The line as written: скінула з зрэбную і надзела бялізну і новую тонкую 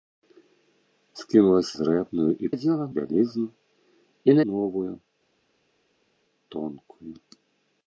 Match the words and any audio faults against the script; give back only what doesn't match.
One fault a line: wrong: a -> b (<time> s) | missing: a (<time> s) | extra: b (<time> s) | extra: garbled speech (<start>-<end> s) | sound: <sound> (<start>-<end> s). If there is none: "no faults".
no faults